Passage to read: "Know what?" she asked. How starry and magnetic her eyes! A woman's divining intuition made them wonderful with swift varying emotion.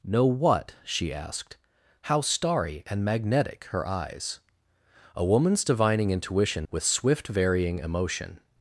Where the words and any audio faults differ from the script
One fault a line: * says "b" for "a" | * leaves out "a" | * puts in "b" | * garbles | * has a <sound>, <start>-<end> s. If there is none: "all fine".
* leaves out "made them wonderful"